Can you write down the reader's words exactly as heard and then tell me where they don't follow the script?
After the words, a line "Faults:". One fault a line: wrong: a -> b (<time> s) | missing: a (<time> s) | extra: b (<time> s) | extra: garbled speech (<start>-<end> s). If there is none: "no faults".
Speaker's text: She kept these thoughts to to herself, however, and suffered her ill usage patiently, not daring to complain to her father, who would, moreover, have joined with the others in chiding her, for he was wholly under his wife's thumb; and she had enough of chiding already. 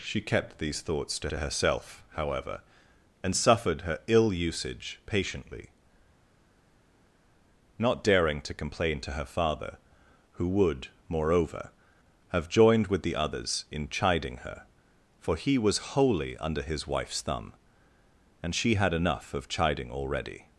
She kept these thoughts to to herself, however, and suffered her ill usage patiently, not daring to complain to her father, who would, moreover, have joined with the others in chiding her, for he was wholly under his wife's thumb; and she had enough of chiding already.
Faults:
no faults